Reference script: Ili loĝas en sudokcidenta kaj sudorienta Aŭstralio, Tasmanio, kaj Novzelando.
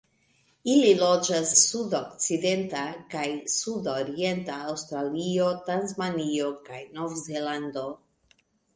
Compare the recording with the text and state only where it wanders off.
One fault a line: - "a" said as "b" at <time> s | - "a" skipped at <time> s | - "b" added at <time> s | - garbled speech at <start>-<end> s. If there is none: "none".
- "en" skipped at 1.5 s